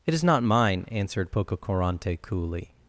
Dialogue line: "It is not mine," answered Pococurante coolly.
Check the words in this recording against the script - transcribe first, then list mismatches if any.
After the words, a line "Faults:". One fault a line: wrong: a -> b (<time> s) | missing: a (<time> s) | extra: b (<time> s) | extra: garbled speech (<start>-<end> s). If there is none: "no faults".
"It is not mine," answered Pococurante coolly.
Faults:
no faults